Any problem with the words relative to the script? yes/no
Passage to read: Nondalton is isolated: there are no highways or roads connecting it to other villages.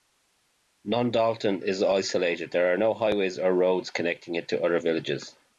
no